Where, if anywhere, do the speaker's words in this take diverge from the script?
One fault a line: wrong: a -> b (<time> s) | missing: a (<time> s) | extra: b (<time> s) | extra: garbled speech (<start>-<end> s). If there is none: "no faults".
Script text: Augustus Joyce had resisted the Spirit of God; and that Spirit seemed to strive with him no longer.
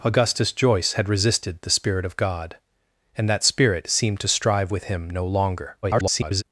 extra: garbled speech (5.8-6.4 s)